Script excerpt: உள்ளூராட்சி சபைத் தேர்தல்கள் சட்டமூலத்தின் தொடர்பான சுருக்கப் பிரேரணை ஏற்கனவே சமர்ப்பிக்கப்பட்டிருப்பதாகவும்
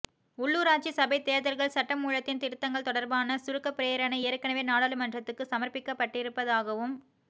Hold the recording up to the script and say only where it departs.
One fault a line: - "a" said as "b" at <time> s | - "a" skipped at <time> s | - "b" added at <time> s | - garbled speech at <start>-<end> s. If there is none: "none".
- "திருத்தங்கள்" added at 2.4 s
- "நாடாளுமன்றத்துக்கு" added at 4.7 s